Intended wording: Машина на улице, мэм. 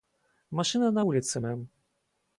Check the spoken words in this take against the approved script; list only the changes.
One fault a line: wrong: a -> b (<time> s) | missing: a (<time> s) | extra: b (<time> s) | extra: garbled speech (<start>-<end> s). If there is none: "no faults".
no faults